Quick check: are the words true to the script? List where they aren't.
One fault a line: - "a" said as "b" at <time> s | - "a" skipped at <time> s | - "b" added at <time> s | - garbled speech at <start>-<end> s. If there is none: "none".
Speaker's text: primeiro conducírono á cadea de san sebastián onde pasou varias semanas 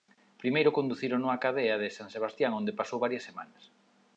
none